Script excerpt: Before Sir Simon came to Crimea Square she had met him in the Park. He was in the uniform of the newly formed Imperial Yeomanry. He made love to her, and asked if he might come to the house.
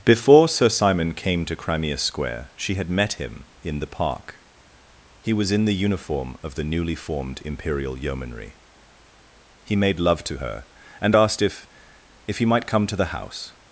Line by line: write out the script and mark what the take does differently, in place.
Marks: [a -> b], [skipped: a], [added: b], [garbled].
Before Sir Simon came to Crimea Square she had met him in the Park. He was in the uniform of the newly formed Imperial Yeomanry. He made love to her, and asked if [added: if] he might come to the house.